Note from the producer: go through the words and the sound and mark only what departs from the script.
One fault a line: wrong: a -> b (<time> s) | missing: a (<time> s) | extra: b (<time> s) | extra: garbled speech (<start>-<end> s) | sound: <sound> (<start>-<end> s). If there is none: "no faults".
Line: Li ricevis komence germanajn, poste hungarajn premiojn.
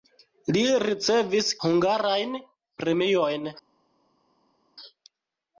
missing: komence germanajn poste (1.5 s)